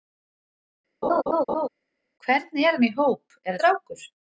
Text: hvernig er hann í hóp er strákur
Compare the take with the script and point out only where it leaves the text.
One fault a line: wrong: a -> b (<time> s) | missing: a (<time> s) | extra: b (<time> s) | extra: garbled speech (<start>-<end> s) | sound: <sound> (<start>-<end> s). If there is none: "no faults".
sound: laugh (1.0-1.7 s)